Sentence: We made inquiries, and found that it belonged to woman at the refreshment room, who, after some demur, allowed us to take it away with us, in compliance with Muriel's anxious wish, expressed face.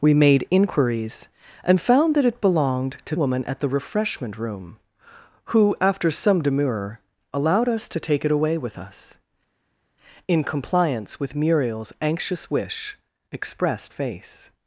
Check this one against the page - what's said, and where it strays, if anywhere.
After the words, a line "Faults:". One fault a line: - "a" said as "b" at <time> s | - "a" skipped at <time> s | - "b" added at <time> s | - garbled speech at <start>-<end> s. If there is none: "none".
We made inquiries, and found that it belonged to woman at the refreshment room, who, after some demur, allowed us to take it away with us, in compliance with Muriel's anxious wish, expressed face.
Faults:
none